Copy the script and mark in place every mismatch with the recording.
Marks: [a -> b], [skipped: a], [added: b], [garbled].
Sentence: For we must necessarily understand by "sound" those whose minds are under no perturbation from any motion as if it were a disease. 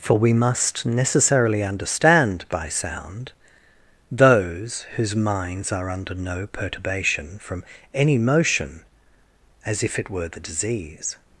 For we must necessarily understand by "sound" those whose minds are under no perturbation from any motion as if it were [a -> the] disease.